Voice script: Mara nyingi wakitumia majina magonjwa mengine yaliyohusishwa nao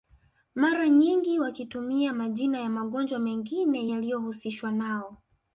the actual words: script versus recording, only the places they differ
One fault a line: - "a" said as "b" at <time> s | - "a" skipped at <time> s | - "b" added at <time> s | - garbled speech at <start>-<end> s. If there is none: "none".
- "ya" added at 2.6 s